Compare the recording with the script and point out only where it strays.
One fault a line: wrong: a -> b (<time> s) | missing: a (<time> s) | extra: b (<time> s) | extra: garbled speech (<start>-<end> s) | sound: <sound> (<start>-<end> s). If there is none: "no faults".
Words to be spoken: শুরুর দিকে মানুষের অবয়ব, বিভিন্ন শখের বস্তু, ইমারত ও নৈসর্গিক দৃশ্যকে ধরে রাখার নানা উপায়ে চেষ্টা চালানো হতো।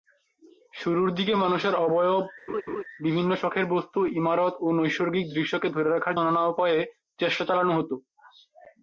sound: laugh (2.5-2.8 s)